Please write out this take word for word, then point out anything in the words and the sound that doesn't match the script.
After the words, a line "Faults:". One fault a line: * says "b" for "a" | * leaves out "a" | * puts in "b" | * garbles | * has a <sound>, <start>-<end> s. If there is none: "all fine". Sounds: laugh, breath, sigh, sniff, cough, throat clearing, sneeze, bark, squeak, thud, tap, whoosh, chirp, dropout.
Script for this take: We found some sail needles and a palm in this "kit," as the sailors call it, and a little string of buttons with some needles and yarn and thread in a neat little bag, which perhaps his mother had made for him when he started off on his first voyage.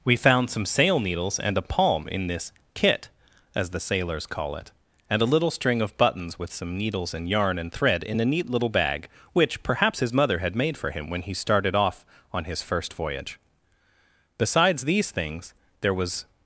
We found some sail needles and a palm in this "kit," as the sailors call it, and a little string of buttons with some needles and yarn and thread in a neat little bag, which perhaps his mother had made for him when he started off on his first voyage. Besides these things there was
Faults:
* puts in "Besides these things there was"